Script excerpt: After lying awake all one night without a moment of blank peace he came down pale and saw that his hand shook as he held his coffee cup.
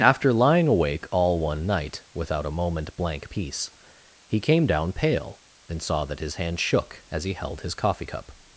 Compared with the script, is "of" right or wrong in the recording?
wrong